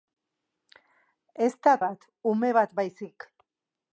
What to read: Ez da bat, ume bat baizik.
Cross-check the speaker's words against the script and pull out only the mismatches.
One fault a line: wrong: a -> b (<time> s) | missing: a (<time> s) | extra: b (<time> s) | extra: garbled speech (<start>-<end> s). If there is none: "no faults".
no faults